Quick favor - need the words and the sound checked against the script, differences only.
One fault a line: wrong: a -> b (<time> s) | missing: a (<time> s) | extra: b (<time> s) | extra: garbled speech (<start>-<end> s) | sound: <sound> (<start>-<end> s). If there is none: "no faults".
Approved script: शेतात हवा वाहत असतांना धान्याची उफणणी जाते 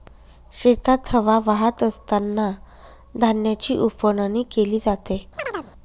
extra: केली (4.5 s)
sound: chirp (5.4-5.7 s)